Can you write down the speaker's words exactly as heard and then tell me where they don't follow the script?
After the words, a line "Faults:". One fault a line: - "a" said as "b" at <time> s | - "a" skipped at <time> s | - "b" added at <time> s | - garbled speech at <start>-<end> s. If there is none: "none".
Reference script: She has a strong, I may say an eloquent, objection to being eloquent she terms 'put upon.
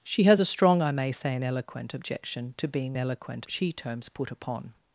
She has a strong, I may say an eloquent, objection to being eloquent she terms 'put upon.
Faults:
none